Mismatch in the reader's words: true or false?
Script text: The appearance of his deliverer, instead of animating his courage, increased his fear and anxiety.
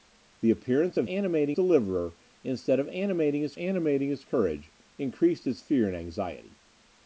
true